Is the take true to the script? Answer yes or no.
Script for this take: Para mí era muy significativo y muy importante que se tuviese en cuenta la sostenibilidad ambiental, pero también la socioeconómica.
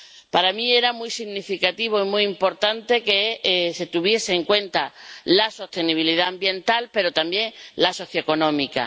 yes